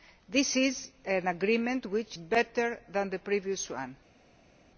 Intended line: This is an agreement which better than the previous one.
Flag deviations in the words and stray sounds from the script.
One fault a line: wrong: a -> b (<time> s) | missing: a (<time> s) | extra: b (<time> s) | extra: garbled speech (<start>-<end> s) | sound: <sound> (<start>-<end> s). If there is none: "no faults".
no faults